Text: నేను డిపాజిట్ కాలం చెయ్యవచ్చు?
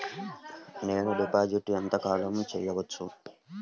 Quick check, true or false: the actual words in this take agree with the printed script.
false